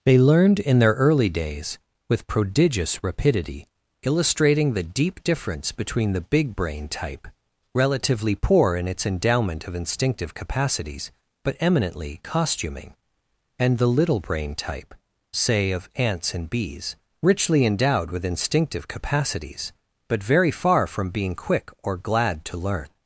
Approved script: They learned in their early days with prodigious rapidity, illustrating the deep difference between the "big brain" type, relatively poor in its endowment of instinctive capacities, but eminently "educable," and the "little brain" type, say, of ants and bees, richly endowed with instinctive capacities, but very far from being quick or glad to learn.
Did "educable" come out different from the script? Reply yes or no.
yes